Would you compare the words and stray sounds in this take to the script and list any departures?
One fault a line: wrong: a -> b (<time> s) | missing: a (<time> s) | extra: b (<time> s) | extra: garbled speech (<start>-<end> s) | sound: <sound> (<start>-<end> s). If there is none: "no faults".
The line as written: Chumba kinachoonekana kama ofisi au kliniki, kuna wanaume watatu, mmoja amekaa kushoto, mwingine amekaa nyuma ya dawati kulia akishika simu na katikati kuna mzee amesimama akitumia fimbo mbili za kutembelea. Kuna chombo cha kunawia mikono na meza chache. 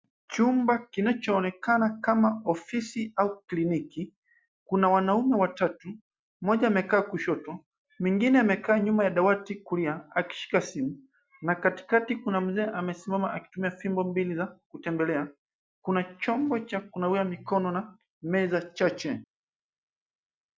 no faults